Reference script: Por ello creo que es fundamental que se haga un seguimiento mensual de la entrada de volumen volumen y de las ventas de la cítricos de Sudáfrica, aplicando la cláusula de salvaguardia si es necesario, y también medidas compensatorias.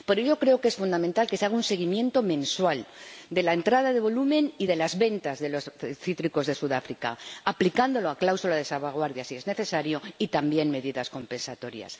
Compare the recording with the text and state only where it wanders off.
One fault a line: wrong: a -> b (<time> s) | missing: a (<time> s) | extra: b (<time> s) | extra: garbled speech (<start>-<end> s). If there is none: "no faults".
missing: volumen (4.5 s)
wrong: la -> los (5.5 s)